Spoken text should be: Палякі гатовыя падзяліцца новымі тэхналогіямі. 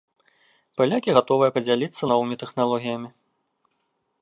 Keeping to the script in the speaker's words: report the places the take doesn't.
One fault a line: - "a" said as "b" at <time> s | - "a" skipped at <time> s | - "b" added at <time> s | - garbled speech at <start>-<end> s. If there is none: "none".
none